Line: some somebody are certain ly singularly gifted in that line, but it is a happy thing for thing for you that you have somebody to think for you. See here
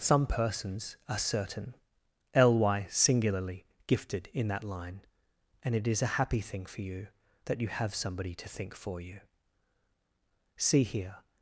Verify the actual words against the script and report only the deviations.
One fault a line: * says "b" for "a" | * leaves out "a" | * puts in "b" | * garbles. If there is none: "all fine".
* says "persons" for "somebody"
* says "and" for "but"
* leaves out "thing for"